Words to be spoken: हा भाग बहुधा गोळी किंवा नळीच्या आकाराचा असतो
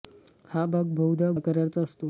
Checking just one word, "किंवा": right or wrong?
wrong